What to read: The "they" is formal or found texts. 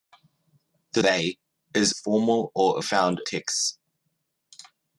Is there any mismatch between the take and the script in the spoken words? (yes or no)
no